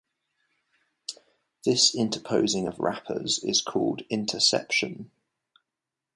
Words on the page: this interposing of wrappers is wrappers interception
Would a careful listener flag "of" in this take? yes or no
no